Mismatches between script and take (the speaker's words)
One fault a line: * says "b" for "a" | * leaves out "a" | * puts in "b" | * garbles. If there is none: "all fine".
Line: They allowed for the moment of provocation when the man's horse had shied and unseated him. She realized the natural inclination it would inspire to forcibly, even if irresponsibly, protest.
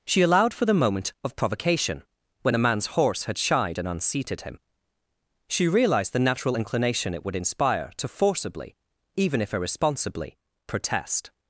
* says "She" for "They"